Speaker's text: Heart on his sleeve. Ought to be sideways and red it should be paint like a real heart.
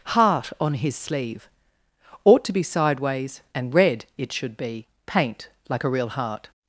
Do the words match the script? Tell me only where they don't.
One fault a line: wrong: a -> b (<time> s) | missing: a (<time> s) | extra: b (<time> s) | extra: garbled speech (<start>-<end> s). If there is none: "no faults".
no faults